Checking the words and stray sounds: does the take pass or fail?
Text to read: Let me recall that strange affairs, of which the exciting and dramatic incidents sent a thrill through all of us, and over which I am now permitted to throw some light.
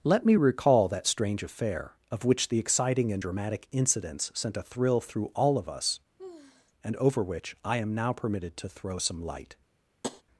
fail